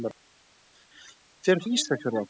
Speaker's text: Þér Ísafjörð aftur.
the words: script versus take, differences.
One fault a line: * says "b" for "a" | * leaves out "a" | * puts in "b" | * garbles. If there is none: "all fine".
all fine